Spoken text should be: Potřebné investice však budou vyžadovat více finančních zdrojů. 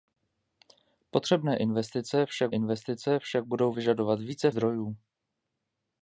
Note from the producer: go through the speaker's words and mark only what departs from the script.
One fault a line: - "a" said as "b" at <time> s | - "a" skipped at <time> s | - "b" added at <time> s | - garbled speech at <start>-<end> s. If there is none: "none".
- "investice však" added at 2.5 s
- "finančních" skipped at 4.5 s